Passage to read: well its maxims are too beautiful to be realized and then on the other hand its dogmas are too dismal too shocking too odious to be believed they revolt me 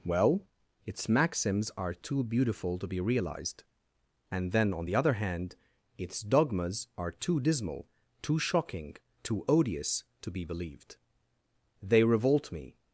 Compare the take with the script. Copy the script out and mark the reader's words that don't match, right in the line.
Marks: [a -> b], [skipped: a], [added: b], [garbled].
well its maxims are too beautiful to be realized and then on the other hand its dogmas are too dismal too shocking too odious to be believed they revolt me